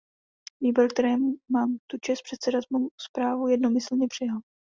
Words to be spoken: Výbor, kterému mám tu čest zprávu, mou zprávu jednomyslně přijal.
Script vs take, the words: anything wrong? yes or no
yes